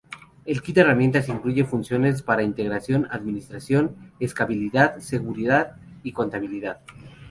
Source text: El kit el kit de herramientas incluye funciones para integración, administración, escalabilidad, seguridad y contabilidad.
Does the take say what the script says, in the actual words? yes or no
no